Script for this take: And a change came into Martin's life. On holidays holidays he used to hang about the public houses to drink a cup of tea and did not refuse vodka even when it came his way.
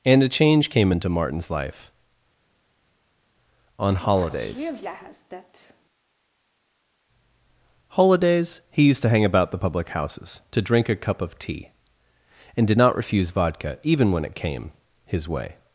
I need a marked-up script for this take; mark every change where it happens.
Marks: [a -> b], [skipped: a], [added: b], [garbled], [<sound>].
And a change came into Martin's life. On holidays holidays he used to hang about the public houses to drink a cup of tea and did not refuse vodka even when it came his way.